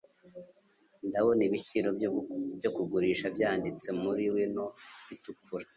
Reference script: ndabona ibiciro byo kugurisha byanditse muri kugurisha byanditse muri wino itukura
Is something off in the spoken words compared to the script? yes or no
yes